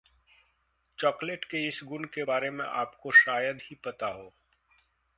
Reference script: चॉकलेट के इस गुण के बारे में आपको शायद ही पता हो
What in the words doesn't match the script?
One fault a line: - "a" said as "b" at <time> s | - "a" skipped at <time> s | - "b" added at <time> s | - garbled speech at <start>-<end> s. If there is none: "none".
none